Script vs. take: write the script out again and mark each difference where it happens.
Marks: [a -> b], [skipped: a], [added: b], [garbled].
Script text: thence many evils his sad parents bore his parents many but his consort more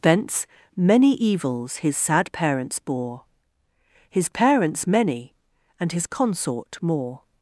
thence many evils his sad parents bore his parents many [but -> and] his consort more